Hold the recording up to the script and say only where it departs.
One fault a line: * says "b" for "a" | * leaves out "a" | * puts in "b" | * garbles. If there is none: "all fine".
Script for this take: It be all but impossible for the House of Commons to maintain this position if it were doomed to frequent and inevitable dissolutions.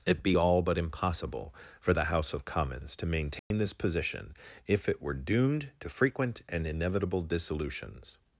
all fine